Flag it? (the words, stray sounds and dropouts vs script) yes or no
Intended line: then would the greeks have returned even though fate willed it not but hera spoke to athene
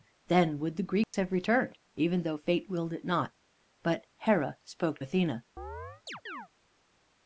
yes